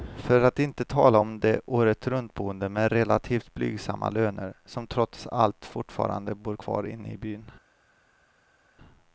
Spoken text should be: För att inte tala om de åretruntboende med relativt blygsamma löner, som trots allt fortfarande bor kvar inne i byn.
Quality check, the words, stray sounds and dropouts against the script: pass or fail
pass